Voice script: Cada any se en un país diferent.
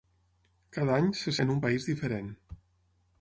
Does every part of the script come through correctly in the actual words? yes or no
yes